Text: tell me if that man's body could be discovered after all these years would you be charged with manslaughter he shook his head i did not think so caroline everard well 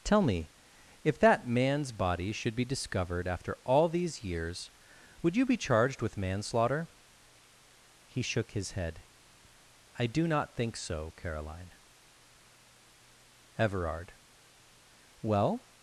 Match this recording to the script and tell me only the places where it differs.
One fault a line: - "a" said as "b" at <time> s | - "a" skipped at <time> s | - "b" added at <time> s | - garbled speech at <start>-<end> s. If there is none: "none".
- "could" said as "should" at 2.3 s
- "did" said as "do" at 10.1 s